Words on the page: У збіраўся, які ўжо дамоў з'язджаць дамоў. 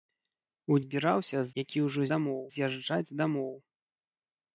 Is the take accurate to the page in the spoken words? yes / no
yes